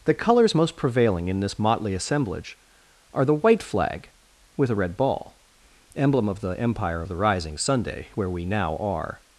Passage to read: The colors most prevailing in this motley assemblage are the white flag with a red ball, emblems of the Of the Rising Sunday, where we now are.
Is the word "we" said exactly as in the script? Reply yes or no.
yes